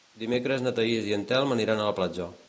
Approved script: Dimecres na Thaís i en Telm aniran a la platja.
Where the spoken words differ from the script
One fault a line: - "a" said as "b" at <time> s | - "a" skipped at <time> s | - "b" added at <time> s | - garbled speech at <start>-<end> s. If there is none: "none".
none